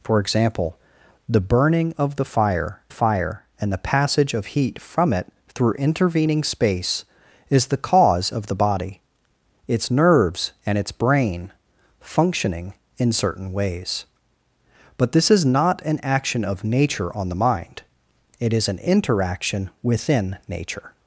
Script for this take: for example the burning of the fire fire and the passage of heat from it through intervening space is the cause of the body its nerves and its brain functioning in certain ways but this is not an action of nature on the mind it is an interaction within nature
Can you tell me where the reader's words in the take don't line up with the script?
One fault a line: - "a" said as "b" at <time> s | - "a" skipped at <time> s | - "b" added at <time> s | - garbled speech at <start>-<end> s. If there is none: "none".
none